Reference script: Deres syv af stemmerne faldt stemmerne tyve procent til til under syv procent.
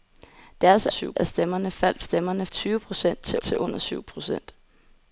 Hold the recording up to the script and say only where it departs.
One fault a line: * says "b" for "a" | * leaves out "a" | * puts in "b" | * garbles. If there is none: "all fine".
all fine